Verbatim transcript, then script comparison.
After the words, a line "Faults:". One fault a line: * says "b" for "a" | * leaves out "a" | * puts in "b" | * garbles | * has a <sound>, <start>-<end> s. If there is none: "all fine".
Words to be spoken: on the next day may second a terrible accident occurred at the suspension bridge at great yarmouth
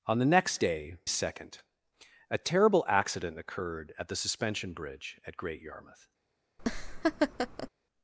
on the next day second a terrible accident occurred at the suspension bridge at great yarmouth
Faults:
* leaves out "may"
* has a laugh, 6.6-7.7 s